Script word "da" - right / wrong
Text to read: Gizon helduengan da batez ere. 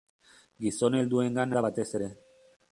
right